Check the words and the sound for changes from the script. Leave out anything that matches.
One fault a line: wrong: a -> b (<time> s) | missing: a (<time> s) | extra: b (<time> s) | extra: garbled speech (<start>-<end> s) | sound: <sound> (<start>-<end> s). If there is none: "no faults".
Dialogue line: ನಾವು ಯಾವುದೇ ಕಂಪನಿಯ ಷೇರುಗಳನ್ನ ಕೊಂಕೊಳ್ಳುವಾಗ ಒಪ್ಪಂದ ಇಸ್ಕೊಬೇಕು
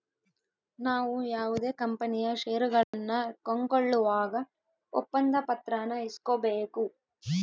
sound: dropout (2.8-2.9 s)
extra: ಪತ್ರಾನ (5.5 s)